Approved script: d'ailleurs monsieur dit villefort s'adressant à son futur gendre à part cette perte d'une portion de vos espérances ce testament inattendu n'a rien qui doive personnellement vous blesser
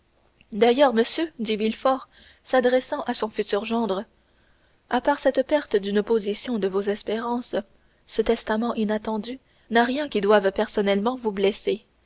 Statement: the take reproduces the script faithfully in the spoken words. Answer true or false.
true